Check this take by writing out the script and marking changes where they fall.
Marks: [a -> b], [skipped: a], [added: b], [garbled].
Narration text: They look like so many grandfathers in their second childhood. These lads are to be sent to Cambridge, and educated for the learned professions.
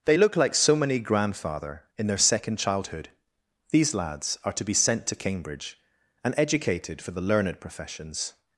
They look like so many [grandfathers -> grandfather] in their second childhood. These lads are to be sent to Cambridge, and educated for the learned professions.